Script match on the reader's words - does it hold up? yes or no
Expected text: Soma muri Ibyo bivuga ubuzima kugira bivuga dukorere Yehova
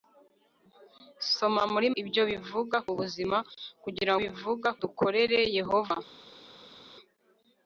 yes